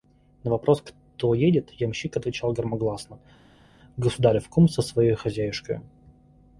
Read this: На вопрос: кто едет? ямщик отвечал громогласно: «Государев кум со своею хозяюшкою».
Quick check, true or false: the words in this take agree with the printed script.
true